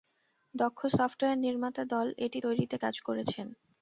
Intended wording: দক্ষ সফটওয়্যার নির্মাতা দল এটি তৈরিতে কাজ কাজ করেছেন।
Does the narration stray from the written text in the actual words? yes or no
yes